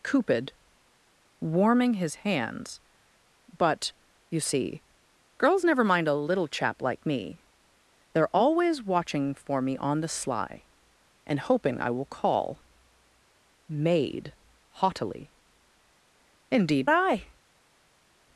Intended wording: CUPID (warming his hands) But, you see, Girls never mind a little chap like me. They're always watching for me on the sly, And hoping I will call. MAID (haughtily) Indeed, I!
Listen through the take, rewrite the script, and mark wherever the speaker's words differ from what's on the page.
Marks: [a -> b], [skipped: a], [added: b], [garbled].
CUPID (warming his hands) But, you see, Girls never mind a little chap like me. They're always watching for me on the sly, And hoping I will call. MAID (haughtily) Indeed, I!